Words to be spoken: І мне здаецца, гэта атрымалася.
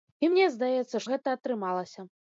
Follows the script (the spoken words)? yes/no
yes